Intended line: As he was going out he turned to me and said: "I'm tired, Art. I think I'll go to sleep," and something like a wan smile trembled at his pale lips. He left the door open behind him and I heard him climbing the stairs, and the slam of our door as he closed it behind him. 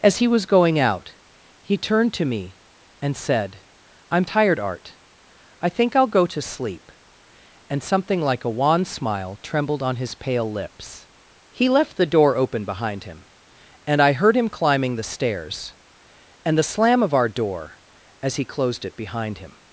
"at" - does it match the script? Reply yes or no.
no